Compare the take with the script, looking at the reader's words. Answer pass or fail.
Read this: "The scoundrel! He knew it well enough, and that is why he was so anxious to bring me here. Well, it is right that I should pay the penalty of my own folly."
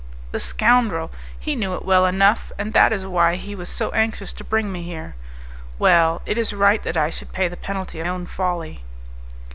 fail